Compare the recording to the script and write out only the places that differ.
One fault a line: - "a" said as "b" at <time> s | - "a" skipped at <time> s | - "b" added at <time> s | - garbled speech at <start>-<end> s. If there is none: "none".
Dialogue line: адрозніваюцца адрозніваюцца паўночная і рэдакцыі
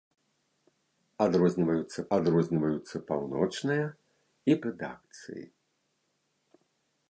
none